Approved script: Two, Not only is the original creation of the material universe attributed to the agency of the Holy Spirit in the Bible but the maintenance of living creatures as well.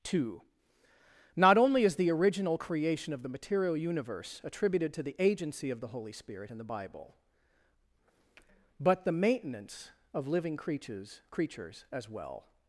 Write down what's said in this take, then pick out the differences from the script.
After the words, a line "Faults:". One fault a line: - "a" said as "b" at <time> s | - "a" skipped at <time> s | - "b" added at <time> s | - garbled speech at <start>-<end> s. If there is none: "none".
Two, Not only is the original creation of the material universe attributed to the agency of the Holy Spirit in the Bible but the maintenance of living creatures creatures as well.
Faults:
- "creatures" added at 11.3 s